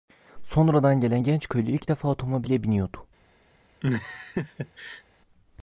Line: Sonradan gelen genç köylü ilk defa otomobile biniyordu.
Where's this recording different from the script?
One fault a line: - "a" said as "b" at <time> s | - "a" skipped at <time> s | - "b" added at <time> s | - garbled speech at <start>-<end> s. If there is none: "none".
none